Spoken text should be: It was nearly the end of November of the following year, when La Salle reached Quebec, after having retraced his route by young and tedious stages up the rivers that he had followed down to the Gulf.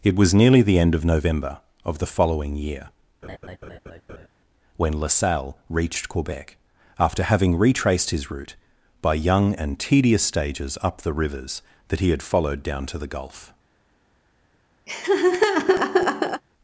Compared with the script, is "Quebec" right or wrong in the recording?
right